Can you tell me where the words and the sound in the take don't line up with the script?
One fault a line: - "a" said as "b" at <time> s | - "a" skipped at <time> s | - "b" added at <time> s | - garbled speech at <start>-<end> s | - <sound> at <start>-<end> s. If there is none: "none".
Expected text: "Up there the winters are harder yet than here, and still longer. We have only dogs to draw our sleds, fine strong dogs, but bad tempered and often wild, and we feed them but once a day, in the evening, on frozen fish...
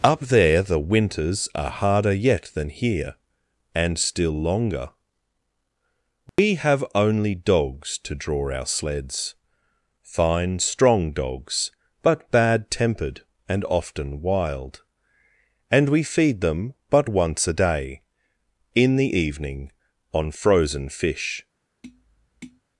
- dropout at 6.3-6.4 s
- tap at 21.8-22.6 s